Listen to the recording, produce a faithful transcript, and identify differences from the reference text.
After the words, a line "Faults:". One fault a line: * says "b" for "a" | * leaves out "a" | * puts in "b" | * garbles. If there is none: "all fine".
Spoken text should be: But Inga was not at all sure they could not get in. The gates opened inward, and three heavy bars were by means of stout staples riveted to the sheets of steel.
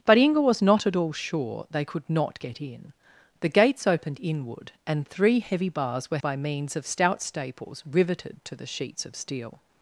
But Inga was not at all sure they could not get in. The gates opened inward, and three heavy bars were by means of stout staples riveted to the sheets of steel.
Faults:
all fine